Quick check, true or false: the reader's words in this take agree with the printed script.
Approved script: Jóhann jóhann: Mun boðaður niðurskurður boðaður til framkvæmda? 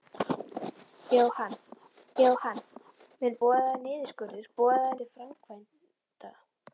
true